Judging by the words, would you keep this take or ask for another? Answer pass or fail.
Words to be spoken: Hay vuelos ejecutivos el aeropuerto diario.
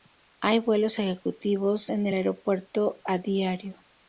fail